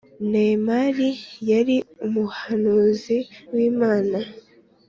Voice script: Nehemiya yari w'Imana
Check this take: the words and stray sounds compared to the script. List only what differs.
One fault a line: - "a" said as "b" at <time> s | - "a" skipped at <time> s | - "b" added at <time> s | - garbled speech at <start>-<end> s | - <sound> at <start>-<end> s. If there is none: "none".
- "umuhanuzi" added at 2.0 s